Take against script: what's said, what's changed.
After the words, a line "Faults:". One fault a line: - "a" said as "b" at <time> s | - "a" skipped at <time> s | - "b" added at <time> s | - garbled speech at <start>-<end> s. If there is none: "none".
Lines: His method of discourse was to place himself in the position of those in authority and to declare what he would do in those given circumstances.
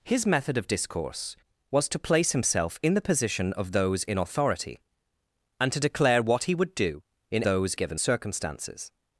His method of discourse was to place himself in the position of those in authority and to declare what he would do in those given circumstances.
Faults:
none